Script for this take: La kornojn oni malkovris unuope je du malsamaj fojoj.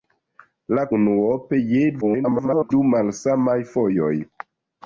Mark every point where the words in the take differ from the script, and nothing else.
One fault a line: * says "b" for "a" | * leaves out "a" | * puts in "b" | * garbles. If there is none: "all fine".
* leaves out "kornojn oni malkovris"
* garbles